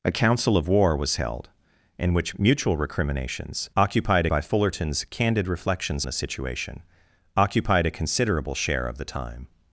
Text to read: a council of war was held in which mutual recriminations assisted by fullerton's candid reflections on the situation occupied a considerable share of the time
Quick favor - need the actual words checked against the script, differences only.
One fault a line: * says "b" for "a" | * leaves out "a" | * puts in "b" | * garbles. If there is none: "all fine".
* says "occupied" for "assisted"
* leaves out "on"